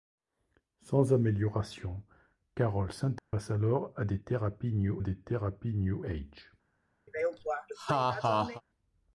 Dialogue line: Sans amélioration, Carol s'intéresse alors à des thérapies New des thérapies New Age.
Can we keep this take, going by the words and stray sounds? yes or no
no